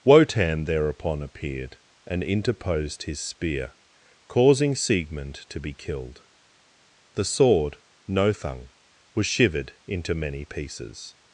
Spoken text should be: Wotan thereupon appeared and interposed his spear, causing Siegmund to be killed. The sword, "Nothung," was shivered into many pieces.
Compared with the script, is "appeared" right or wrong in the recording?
right